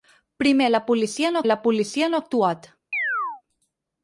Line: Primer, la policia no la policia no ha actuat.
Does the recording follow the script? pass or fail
pass